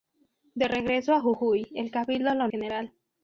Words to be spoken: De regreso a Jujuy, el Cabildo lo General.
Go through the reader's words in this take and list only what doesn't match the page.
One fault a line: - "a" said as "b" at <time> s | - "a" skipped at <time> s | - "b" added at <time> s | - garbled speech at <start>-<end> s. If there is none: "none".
none